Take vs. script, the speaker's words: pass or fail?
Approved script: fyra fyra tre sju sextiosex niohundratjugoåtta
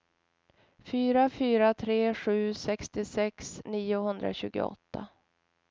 pass